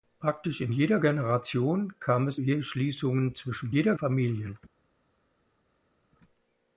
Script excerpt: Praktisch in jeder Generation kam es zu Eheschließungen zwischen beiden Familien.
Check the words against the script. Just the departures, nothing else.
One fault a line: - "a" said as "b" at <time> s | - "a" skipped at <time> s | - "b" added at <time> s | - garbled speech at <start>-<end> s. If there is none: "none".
- "zu" skipped at 2.4 s
- "beiden" said as "jeder" at 3.7 s